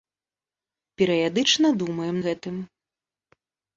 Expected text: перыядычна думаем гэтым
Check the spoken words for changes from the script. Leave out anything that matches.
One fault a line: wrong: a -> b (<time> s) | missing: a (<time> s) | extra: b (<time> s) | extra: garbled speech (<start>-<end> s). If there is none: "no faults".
no faults